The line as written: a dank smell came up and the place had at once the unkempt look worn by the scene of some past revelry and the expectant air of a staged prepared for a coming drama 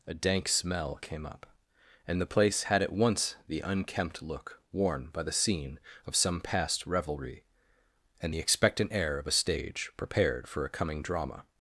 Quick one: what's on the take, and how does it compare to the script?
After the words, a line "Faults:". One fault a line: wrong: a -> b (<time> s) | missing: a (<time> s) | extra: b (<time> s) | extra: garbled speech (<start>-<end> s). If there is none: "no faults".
a dank smell came up and the place had at once the unkempt look worn by the scene of some past revelry and the expectant air of a stage prepared for a coming drama
Faults:
wrong: staged -> stage (9.3 s)